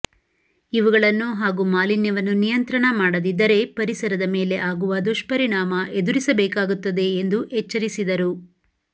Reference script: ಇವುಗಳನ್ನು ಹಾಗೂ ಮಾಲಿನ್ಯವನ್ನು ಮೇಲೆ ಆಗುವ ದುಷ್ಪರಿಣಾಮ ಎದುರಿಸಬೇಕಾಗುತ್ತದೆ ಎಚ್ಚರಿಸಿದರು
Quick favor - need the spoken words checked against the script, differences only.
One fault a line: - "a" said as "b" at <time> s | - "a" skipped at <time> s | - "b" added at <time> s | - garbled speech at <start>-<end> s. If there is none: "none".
- "ನಿಯಂತ್ರಣ ಮಾಡದಿದ್ದರೆ ಪರಿಸರದ" added at 2.4 s
- "ಎಂದು" added at 7.2 s